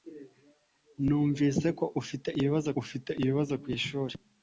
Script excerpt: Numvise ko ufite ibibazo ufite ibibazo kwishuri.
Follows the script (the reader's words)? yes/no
yes